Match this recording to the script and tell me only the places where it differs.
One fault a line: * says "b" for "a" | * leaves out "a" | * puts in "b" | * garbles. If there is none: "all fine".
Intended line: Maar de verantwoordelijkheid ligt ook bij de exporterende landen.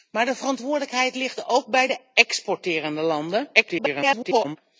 * garbles